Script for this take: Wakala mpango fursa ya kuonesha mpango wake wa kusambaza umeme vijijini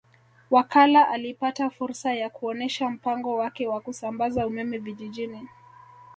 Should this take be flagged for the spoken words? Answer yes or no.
yes